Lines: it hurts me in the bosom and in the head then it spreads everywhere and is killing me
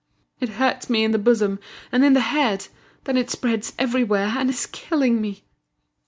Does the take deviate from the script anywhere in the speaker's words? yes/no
no